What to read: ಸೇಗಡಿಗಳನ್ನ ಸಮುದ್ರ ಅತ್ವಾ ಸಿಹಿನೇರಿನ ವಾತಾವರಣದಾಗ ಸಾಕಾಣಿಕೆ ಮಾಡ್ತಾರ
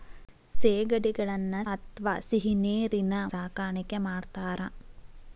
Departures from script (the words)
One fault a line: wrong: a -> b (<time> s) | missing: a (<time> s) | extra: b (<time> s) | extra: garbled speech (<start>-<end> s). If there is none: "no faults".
missing: ಸಮುದ್ರ (1.6 s)
missing: ವಾತಾವರಣದಾಗ (3.1 s)